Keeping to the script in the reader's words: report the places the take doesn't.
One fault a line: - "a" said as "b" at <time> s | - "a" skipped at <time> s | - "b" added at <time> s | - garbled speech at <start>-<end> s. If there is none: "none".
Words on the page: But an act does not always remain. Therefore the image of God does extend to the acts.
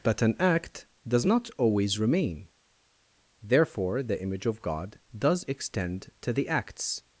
none